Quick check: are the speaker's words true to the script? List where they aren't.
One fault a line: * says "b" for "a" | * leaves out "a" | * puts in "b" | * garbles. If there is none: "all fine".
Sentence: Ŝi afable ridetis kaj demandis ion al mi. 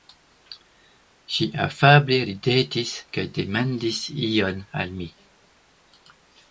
all fine